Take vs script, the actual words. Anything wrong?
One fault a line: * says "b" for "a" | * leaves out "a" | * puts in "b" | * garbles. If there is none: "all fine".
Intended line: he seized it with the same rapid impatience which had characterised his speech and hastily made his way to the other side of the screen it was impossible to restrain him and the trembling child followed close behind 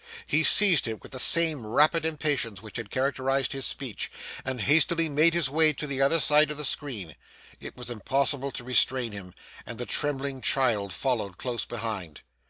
all fine